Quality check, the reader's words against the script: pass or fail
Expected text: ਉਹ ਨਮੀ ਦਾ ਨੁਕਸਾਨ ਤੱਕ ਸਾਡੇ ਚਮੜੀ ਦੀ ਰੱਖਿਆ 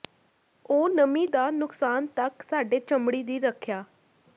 pass